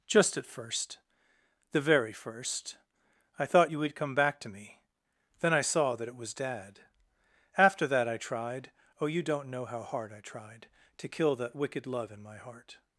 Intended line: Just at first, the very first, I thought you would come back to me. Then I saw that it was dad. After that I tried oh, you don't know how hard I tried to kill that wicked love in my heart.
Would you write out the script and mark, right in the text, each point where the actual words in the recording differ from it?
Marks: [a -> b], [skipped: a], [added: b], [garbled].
Just at first, the very first, I thought you would come back to me. Then I saw that it was dad. After that I tried oh, you don't know how hard I tried to kill that wicked love in my heart.